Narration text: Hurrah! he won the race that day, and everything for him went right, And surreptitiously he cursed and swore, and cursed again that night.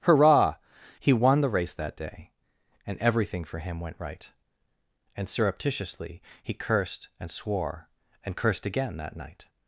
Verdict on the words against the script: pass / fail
pass